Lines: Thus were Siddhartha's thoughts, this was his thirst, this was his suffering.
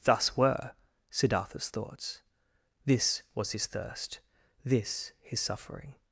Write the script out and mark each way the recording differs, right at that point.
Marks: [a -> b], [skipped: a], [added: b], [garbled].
Thus were Siddhartha's thoughts, this was his thirst, this [skipped: was] his suffering.